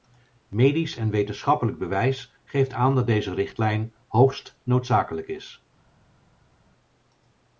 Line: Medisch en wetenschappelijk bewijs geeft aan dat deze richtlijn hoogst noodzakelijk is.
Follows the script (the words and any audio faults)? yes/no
yes